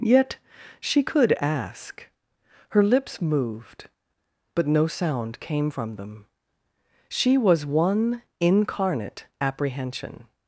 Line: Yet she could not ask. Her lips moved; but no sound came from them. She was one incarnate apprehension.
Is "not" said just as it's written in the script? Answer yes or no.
no